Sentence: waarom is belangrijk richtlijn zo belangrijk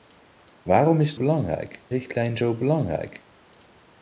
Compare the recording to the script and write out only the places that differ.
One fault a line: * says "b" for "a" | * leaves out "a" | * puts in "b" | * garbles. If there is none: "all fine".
all fine